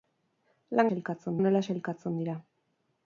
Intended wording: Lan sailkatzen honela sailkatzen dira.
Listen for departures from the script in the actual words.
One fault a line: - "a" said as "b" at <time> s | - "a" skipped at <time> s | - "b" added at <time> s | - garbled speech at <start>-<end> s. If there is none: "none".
none